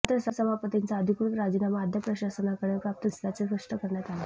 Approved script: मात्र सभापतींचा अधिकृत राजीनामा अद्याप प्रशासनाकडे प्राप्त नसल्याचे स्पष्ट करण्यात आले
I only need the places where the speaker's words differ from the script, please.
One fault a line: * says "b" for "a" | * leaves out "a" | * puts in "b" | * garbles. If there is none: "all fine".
all fine